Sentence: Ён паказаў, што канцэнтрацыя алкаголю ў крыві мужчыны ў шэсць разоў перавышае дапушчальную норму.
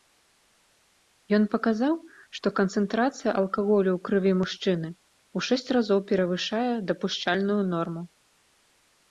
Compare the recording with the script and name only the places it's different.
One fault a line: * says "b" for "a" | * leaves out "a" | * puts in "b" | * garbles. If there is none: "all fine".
all fine